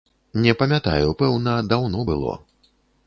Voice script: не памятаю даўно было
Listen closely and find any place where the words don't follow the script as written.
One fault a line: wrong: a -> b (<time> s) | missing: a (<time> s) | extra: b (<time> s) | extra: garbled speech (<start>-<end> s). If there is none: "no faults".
extra: пэўна (1.2 s)